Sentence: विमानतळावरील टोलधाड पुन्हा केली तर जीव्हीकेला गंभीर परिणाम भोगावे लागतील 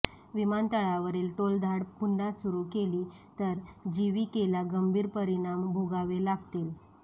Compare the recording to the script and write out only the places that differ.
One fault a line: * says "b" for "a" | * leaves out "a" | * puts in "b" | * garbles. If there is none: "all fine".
* puts in "सुरू"